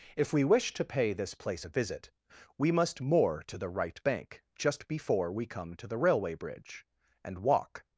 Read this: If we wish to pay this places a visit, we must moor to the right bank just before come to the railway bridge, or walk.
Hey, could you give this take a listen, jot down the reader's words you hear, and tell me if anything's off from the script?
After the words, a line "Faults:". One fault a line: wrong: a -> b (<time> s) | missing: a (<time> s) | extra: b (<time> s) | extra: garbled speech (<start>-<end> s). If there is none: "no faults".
If we wish to pay this place a visit, we must moor to the right bank just before we come to the railway bridge, and walk.
Faults:
wrong: places -> place (1.4 s)
extra: we (5.3 s)
wrong: or -> and (7.2 s)